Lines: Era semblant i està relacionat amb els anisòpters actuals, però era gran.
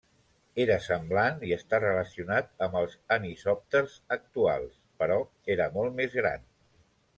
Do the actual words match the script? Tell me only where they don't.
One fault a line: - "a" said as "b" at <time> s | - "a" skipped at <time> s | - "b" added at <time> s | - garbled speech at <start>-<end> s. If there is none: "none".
- "molt més" added at 5.8 s